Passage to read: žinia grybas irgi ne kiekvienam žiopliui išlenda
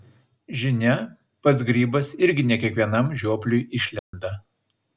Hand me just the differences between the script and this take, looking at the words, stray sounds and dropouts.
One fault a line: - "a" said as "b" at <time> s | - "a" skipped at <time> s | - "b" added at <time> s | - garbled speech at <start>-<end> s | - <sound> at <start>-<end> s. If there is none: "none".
- "pats" added at 1.5 s
- dropout at 4.0-4.1 s